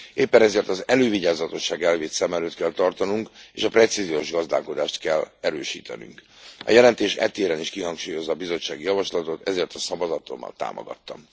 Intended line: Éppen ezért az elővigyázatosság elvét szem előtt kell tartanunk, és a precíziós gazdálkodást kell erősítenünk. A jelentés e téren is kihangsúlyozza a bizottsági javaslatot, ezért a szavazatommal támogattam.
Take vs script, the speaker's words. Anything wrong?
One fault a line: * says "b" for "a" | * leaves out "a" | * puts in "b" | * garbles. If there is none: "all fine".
all fine